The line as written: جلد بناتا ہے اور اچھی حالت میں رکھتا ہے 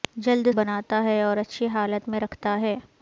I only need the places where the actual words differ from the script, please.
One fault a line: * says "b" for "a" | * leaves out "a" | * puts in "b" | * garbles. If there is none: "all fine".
all fine